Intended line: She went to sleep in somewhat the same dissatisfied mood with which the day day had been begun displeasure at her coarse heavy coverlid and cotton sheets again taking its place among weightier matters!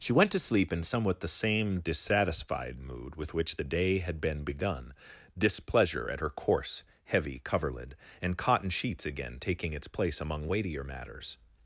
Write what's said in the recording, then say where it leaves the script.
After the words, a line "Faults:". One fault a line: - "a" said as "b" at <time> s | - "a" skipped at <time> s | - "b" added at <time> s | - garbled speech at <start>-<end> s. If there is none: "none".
She went to sleep in somewhat the same dissatisfied mood with which the day had been begun displeasure at her coarse heavy coverlid and cotton sheets again taking its place among weightier matters!
Faults:
- "day" skipped at 4.0 s